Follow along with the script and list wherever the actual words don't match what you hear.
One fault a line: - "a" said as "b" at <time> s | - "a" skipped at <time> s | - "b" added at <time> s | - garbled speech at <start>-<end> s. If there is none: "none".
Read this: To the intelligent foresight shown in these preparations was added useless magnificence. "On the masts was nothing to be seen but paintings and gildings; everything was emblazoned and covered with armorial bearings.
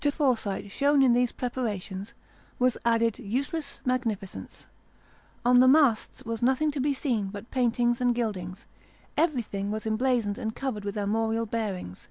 - "the intelligent" skipped at 0.1 s